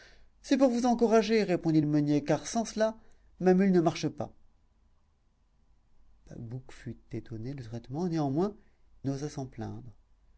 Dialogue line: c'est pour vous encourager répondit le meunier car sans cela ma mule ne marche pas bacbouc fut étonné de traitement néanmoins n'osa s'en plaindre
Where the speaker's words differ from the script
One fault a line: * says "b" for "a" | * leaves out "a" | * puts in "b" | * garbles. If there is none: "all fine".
all fine